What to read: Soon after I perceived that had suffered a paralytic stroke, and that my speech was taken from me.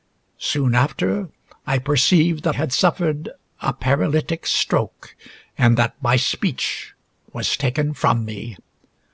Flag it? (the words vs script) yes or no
no